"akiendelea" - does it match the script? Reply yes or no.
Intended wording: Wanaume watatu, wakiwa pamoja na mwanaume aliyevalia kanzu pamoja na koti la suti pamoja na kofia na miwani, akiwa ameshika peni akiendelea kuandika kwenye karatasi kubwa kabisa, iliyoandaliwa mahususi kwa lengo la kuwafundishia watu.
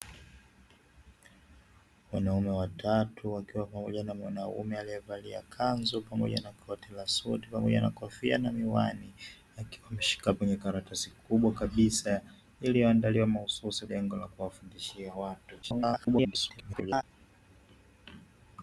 no